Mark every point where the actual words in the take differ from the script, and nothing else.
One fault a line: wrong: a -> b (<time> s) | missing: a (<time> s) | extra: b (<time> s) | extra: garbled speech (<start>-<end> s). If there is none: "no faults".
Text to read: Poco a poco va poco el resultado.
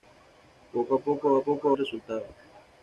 no faults